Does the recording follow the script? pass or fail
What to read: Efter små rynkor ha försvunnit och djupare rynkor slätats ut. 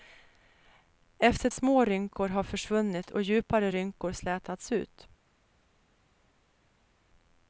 pass